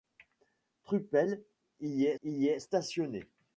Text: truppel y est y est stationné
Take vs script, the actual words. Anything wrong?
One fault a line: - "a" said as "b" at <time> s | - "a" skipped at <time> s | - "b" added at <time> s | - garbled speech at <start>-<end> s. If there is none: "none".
none